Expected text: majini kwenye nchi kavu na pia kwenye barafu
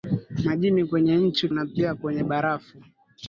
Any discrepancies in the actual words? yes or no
yes